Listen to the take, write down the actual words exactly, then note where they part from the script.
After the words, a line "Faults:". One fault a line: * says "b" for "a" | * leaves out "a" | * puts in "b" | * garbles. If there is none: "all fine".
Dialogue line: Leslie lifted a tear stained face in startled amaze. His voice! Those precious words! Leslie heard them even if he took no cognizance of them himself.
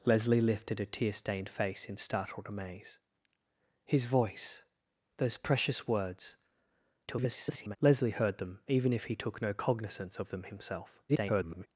Leslie lifted a tear stained face in startled amaze. His voice! Those precious words! [garbled] Leslie heard them even if he took no cognizance of them himself. [garbled]
Faults:
* garbles
* garbles